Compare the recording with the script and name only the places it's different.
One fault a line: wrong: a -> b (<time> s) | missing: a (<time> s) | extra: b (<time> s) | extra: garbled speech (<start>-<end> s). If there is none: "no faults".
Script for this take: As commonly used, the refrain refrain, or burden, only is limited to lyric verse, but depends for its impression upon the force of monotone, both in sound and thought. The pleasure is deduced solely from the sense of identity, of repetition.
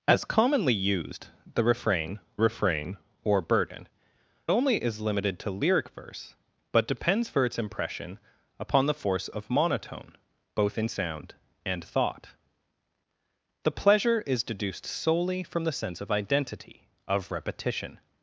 no faults